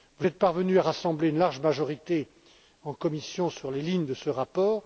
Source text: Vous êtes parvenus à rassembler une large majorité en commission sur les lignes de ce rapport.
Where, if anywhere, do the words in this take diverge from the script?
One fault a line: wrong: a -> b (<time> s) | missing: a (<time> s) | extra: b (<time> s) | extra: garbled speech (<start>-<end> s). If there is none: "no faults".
no faults